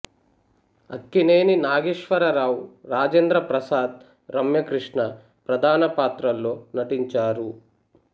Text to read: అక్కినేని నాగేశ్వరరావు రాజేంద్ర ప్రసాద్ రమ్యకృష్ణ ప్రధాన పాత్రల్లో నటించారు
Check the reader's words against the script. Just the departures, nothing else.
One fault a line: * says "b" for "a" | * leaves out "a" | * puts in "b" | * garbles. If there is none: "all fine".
all fine